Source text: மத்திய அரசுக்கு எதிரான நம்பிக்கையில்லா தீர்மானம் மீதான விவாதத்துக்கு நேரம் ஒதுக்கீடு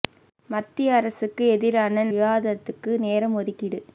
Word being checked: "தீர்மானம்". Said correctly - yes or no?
no